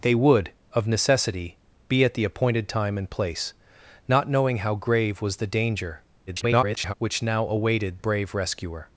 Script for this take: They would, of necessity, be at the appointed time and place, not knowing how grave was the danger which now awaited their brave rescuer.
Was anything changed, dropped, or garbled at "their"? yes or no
yes